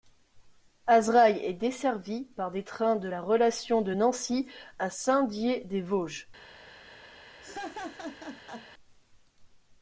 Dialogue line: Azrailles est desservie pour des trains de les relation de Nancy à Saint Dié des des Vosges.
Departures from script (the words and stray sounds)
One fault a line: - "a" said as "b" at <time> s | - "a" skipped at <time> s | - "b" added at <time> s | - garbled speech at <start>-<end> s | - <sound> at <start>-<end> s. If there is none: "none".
- "pour" said as "par" at 2.2 s
- "les" said as "la" at 3.1 s
- "des" skipped at 5.8 s
- laugh at 7.4-8.7 s